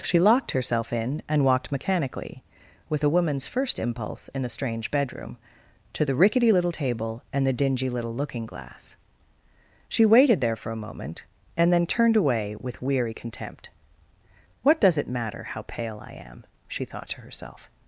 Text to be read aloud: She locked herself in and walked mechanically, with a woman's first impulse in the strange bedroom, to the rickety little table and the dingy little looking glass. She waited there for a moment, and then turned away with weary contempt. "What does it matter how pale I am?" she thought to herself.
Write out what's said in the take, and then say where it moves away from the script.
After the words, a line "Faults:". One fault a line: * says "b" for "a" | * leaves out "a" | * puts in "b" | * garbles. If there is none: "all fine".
She locked herself in and walked mechanically, with a woman's first impulse in the strange bedroom, to the rickety little table and the dingy little looking glass. She waited there for a moment, and then turned away with weary contempt. "What does it matter how pale I am?" she thought to herself.
Faults:
all fine